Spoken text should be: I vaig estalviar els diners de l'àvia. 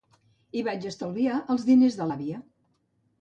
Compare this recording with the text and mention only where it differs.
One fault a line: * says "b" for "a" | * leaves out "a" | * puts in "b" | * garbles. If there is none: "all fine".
all fine